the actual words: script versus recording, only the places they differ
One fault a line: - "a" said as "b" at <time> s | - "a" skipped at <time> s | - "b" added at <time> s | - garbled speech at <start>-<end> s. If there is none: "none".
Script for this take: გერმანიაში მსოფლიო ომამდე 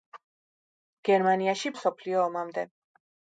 none